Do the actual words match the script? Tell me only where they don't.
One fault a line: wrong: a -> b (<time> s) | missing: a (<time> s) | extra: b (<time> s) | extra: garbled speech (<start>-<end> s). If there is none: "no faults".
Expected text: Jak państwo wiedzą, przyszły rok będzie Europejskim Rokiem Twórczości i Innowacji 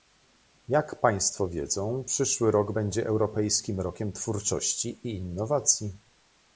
no faults